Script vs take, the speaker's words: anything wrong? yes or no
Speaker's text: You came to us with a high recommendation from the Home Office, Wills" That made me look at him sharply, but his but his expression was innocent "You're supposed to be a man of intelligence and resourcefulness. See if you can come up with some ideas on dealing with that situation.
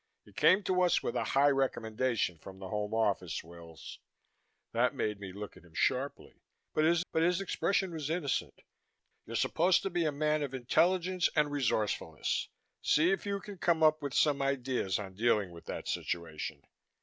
no